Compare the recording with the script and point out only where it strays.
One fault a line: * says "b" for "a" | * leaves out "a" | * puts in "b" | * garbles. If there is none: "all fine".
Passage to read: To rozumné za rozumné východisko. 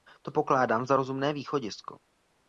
* says "pokládám" for "rozumné"